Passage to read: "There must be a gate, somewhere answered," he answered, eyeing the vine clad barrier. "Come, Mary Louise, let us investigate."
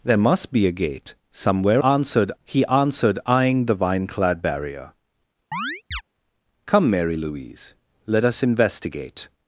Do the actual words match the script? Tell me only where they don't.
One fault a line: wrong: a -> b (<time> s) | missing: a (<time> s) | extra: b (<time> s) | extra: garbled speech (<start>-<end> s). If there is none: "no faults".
no faults